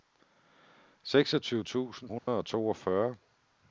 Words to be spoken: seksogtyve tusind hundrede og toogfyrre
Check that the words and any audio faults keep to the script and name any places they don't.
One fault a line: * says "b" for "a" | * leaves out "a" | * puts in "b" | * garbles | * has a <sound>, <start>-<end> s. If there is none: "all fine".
* has a dropout, 2.2-2.3 s